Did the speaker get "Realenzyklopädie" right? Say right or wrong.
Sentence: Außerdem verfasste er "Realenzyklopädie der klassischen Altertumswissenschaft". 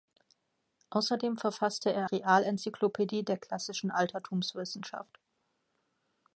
right